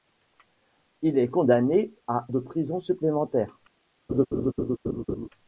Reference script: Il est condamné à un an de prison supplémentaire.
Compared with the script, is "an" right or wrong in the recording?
wrong